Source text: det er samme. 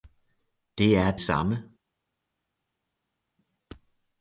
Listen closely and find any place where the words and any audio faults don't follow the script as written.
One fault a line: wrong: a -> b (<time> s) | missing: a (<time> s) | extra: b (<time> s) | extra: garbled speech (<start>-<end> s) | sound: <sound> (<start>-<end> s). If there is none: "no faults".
no faults